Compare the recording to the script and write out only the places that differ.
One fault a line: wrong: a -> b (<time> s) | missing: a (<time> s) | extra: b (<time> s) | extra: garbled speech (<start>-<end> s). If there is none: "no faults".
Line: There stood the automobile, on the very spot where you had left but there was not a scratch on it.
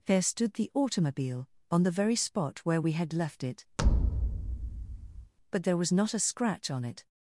wrong: you -> we (2.8 s)
extra: it (3.4 s)